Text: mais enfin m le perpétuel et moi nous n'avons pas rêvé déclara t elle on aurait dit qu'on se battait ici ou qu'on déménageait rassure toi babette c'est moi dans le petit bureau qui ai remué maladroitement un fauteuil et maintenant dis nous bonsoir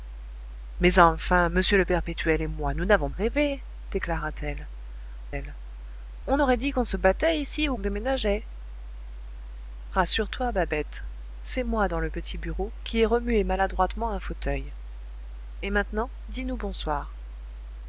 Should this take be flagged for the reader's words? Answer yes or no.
yes